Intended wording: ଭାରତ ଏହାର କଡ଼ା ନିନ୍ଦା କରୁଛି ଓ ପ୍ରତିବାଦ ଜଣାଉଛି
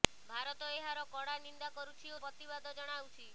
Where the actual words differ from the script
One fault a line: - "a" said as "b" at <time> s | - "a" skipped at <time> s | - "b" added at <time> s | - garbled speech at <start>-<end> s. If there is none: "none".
none